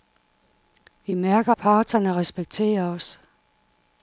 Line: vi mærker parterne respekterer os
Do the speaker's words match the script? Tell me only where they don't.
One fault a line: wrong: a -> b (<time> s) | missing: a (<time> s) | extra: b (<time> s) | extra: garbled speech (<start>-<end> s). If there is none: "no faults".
no faults